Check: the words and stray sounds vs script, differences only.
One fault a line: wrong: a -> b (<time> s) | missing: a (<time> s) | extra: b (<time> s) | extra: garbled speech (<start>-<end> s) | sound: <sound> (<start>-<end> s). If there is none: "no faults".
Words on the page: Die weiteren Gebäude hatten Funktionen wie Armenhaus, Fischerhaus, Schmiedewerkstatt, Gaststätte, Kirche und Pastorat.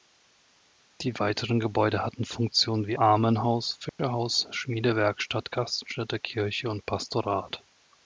sound: dropout (3.9-4.0 s)